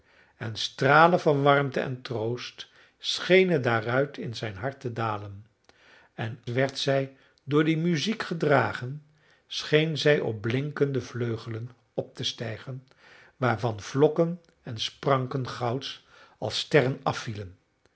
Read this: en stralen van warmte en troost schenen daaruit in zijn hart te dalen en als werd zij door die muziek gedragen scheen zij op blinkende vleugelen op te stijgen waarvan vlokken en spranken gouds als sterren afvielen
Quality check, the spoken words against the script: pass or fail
fail